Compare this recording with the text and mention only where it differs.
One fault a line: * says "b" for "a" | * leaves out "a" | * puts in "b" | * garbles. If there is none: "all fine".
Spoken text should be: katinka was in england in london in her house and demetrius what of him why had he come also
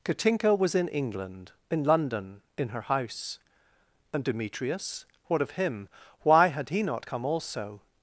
* puts in "not"